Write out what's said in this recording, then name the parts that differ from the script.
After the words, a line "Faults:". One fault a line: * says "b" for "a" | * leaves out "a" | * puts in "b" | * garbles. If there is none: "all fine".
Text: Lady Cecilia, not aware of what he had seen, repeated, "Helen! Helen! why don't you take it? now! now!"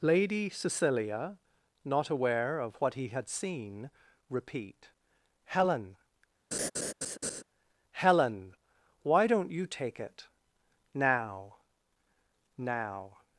Lady Cecilia, not aware of what he had seen, repeat, "Helen! Helen! why don't you take it? now! now!"
Faults:
* says "repeat" for "repeated"